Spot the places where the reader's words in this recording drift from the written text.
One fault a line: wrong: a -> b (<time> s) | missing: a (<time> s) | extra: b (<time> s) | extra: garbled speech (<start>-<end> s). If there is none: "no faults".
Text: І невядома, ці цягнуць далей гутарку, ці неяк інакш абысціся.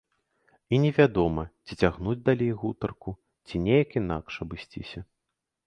no faults